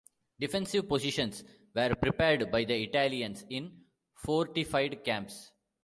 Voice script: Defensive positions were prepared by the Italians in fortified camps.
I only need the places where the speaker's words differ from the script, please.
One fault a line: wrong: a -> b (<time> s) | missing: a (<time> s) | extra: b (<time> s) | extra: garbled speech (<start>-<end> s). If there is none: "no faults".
no faults